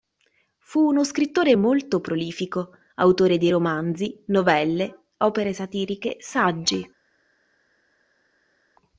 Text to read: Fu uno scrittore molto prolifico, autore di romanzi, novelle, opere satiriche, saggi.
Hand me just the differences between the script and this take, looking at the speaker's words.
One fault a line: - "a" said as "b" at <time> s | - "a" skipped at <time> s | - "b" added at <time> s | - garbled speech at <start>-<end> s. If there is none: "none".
none